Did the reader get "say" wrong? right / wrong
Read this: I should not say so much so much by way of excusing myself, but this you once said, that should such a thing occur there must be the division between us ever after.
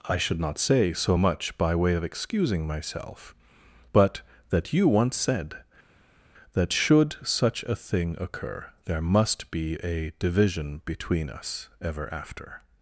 right